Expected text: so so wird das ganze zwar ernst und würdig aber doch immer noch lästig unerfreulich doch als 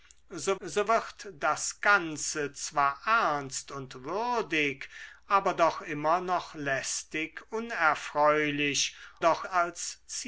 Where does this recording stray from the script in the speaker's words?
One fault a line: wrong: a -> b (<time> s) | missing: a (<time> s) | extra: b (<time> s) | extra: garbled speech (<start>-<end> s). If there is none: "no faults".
no faults